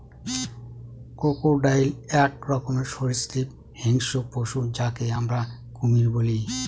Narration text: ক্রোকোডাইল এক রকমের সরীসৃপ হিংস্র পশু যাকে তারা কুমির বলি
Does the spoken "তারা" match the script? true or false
false